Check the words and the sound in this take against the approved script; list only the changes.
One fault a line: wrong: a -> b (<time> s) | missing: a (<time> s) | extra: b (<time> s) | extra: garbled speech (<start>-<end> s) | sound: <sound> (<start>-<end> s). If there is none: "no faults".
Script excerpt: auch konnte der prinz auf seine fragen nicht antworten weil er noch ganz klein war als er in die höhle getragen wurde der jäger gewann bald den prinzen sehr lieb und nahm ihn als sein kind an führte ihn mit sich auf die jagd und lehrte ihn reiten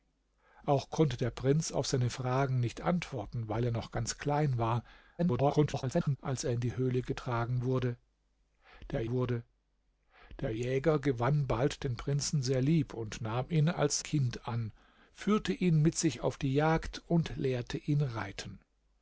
extra: garbled speech (5.2-6.2 s)
extra: wurde der (9.1 s)
missing: sein (14.0 s)